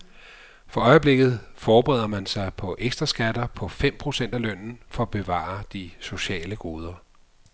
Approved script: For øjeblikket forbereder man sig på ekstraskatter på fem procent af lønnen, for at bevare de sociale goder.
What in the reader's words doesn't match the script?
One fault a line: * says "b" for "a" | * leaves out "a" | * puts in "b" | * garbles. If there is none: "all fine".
all fine